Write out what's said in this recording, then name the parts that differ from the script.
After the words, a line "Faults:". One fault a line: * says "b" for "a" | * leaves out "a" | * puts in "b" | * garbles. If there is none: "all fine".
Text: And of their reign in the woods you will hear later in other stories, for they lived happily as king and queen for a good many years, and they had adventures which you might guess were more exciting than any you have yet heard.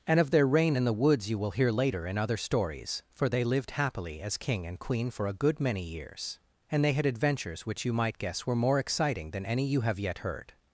And of their reign in the woods you will hear later in other stories, for they lived happily as king and queen for a good many years, and they had adventures which you might guess were more exciting than any you have yet heard.
Faults:
all fine